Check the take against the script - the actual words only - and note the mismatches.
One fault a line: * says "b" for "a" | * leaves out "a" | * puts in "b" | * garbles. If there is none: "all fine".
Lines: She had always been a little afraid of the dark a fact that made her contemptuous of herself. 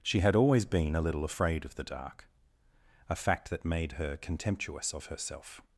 all fine